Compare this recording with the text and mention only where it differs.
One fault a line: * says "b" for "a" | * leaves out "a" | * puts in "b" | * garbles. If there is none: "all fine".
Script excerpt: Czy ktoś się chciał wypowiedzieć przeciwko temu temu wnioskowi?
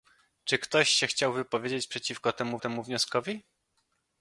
all fine